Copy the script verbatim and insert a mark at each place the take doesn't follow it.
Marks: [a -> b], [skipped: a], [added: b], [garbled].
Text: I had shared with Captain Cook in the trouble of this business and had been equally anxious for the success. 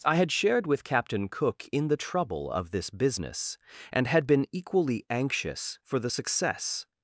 I had shared with Captain Cook in the trouble of this business and had been equally anxious for the success.